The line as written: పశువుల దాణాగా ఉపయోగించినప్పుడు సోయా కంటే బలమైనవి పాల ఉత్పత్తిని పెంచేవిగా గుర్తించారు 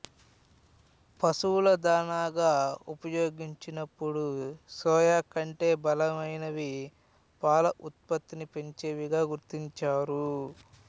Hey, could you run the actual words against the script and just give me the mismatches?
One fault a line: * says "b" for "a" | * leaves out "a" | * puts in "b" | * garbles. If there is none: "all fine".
all fine